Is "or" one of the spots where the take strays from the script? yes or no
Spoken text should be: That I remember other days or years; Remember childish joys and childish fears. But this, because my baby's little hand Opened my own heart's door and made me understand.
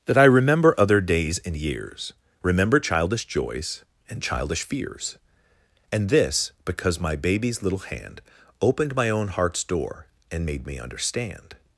yes